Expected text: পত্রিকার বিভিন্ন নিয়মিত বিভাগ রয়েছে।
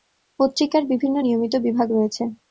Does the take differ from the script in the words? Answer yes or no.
no